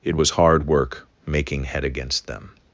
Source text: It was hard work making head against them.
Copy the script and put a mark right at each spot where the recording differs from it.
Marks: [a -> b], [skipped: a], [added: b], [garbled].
It was hard work making head against them.